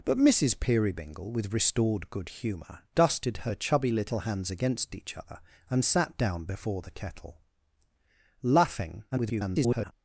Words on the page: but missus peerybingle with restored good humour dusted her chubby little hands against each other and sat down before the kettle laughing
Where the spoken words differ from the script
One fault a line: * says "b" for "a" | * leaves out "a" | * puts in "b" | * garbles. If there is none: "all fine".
* garbles